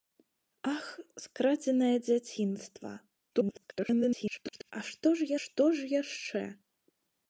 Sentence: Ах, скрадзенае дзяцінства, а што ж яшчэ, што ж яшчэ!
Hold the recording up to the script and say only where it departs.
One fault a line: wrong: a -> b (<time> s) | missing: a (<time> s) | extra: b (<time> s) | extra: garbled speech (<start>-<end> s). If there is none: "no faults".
extra: garbled speech (3.3-4.7 s)
missing: яшчэ (5.3 s)